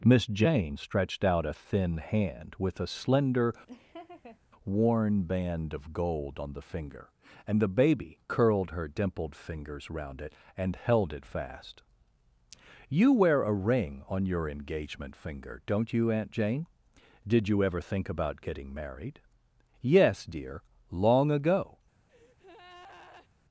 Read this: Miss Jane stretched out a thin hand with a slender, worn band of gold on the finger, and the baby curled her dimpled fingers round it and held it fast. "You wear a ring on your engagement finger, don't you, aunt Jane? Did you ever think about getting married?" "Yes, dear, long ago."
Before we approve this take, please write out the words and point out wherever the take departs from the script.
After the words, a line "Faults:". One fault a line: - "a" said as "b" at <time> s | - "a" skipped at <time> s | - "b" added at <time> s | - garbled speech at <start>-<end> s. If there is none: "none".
Miss Jane stretched out a thin hand with a slender, worn band of gold on the finger, and the baby curled her dimpled fingers round it and held it fast. "You wear a ring on your engagement finger, don't you, aunt Jane? Did you ever think about getting married?" "Yes, dear, long ago."
Faults:
none